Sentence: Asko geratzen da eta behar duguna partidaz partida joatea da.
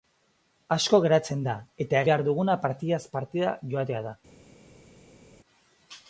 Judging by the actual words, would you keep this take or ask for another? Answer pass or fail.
pass